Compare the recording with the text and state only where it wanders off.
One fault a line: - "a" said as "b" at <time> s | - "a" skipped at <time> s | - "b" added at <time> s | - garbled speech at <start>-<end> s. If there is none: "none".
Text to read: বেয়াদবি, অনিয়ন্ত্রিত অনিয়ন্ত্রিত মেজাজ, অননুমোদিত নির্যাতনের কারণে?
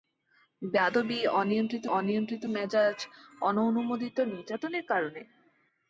none